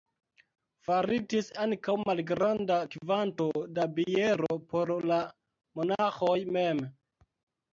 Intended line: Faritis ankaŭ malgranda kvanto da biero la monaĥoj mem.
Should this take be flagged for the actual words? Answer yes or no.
yes